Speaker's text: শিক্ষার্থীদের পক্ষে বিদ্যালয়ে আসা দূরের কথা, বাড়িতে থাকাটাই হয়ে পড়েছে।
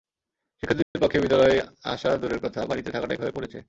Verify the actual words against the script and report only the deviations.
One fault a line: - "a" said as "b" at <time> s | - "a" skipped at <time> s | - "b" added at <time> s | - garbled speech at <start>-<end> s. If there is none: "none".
none